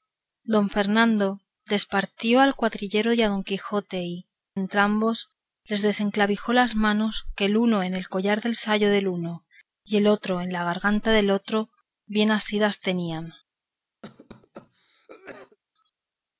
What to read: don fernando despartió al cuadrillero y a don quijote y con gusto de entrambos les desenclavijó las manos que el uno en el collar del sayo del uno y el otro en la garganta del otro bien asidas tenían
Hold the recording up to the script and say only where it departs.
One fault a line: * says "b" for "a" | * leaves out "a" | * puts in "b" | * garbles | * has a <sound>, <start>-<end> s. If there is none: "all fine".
* leaves out "con gusto de"
* has a cough, 14.0-15.6 s